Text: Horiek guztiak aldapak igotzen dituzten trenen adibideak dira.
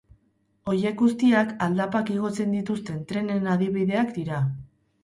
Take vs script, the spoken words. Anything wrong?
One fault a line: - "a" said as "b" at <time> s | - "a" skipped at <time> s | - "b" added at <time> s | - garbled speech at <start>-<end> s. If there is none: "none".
none